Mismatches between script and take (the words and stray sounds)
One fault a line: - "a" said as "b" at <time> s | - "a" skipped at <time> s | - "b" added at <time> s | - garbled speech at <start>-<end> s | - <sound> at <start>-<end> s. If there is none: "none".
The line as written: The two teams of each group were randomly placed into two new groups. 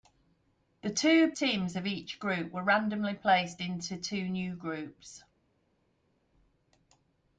none